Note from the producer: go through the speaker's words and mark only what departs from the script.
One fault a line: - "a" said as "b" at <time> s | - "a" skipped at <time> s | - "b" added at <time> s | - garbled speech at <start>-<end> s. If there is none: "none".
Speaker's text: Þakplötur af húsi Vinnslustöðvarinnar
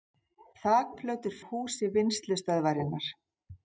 none